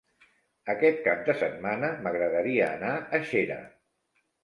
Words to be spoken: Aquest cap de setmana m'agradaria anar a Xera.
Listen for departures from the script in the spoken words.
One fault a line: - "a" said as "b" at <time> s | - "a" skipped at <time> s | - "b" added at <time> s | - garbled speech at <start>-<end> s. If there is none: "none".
none